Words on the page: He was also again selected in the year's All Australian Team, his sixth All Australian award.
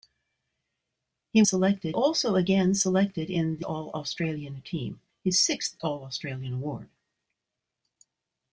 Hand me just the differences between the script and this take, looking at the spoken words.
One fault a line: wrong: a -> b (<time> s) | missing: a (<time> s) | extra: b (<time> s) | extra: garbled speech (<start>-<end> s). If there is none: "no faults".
wrong: was -> selected (1.4 s)
missing: year's (3.7 s)